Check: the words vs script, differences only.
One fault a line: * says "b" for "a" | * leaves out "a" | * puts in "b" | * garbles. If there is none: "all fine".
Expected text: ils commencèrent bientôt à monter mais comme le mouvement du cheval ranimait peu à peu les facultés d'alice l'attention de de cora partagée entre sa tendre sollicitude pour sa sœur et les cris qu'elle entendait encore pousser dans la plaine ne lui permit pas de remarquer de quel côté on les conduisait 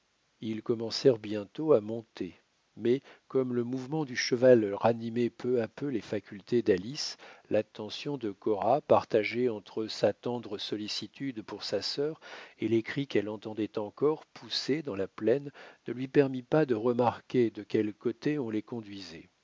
* leaves out "de"